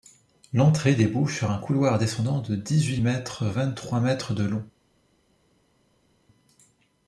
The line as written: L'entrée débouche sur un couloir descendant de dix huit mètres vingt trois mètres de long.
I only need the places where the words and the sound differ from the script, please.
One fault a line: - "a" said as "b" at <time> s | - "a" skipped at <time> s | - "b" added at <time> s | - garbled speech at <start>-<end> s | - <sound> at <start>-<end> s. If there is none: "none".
none